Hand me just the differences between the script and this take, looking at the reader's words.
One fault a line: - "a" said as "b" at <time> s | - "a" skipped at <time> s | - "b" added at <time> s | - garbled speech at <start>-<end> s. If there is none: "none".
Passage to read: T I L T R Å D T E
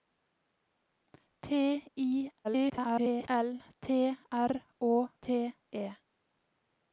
- garbled speech at 2.4-3.3 s
- "D" skipped at 4.9 s